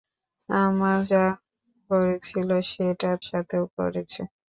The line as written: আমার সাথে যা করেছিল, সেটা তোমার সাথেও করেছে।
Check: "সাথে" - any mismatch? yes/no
yes